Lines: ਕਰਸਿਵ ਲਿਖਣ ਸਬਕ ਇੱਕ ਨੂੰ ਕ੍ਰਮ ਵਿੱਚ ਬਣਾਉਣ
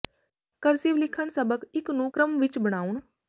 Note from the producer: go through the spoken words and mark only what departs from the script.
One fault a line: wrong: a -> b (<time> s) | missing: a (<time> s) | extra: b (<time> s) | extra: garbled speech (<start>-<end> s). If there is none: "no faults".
no faults